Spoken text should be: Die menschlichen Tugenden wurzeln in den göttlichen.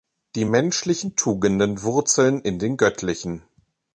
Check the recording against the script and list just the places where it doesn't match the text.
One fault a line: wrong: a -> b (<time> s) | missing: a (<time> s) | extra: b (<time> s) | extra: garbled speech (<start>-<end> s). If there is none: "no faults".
no faults